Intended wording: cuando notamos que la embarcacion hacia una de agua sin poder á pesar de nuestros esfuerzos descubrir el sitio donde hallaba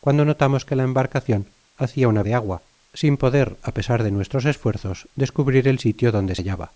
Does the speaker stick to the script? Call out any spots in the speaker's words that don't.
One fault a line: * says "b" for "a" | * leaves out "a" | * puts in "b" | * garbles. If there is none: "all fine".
all fine